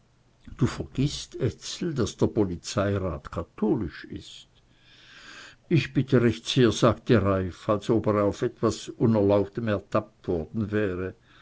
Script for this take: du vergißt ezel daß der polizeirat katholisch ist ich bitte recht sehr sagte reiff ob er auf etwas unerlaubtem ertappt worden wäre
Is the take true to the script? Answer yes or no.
no